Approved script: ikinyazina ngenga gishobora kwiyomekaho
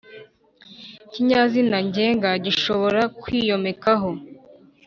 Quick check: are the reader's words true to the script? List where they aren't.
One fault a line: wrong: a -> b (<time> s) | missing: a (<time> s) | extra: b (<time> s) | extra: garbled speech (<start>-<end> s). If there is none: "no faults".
no faults